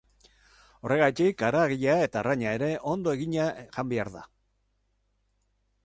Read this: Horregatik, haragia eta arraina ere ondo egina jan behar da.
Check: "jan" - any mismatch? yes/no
no